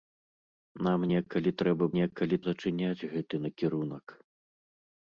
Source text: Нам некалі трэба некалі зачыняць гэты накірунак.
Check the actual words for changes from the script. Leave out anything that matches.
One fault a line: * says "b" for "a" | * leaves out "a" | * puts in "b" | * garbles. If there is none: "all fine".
all fine